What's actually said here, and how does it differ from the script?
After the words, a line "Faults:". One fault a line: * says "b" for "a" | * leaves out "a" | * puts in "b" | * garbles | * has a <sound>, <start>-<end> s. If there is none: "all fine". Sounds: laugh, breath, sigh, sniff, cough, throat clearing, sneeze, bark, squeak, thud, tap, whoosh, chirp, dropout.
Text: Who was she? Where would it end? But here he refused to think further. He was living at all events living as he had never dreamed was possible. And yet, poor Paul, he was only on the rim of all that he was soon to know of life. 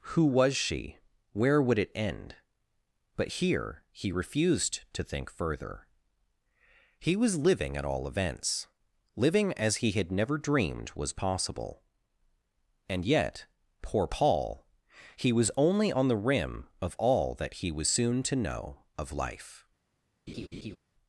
Who was she? Where would it end? But here he refused to think further. He was living at all events living as he had never dreamed was possible. And yet, poor Paul, he was only on the rim of all that he was soon to know of life.
Faults:
* has a laugh, 20.3-20.8 s